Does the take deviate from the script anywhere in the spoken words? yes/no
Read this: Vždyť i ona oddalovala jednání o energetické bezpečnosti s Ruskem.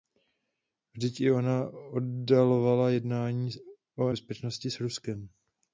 yes